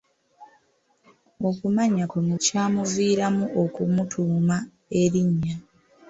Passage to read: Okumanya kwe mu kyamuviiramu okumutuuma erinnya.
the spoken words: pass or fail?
pass